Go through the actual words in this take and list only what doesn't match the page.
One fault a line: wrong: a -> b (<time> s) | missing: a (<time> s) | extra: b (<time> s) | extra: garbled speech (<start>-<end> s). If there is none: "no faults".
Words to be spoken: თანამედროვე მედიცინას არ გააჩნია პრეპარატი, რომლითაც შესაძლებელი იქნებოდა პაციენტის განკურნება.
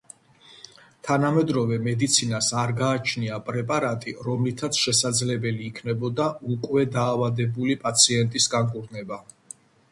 extra: უკვე დაავადებული (6.6 s)